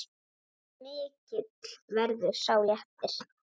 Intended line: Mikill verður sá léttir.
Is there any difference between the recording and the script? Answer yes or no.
no